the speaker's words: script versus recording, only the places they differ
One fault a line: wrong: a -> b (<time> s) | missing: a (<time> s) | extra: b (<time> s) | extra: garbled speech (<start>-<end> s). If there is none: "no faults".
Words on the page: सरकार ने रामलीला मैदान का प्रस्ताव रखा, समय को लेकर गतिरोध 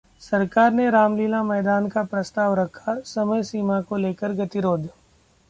extra: सीमा (3.4 s)